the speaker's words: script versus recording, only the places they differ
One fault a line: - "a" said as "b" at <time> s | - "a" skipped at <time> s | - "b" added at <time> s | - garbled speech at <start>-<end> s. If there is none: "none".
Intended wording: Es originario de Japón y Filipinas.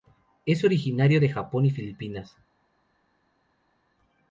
none